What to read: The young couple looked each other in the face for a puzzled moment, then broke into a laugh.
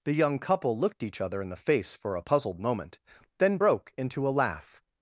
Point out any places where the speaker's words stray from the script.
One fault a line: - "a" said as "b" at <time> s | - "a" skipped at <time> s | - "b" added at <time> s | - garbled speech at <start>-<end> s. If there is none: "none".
none